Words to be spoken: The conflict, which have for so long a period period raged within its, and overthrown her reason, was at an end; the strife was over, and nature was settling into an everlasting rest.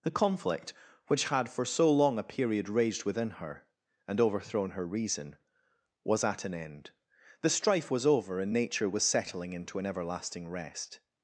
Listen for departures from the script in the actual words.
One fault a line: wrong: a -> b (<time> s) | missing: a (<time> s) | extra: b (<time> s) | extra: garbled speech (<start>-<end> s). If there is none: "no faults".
wrong: have -> had (1.3 s)
missing: period (2.7 s)
wrong: its -> her (3.3 s)